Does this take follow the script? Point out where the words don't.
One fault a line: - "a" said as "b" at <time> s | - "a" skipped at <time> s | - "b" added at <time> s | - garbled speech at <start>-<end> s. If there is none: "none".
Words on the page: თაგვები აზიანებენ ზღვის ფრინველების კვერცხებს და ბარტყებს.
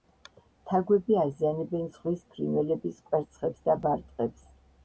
none